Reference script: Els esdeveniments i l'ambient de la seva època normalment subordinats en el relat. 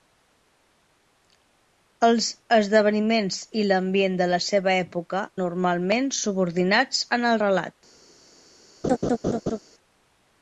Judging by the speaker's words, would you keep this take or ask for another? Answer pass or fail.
pass